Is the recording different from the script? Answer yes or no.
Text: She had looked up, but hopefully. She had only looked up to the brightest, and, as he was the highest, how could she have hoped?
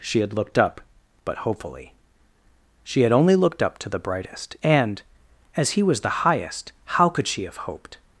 no